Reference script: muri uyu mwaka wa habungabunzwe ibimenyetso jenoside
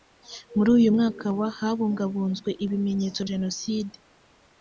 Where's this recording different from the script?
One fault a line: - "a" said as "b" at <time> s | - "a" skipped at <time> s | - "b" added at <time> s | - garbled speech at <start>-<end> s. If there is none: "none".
none